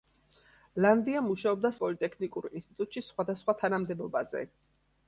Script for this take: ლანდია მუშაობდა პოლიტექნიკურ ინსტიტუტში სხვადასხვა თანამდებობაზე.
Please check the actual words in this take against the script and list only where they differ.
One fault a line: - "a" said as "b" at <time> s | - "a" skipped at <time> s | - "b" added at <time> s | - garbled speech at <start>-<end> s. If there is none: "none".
none